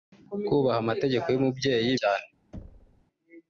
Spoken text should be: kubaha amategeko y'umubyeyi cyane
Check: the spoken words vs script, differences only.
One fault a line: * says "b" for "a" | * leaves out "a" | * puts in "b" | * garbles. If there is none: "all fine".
all fine